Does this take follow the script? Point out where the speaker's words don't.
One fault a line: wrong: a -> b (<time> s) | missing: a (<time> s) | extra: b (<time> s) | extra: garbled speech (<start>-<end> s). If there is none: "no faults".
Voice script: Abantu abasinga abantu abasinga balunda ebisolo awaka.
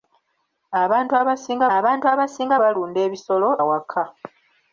no faults